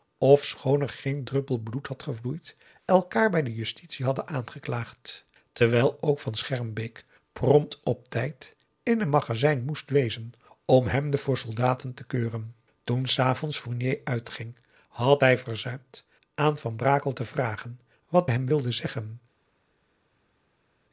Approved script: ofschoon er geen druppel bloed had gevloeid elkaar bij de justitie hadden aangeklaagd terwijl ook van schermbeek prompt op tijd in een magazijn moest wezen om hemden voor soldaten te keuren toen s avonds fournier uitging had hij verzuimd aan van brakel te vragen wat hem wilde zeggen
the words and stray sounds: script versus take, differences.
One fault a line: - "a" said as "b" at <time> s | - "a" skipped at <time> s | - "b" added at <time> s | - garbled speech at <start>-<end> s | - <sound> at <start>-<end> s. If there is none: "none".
none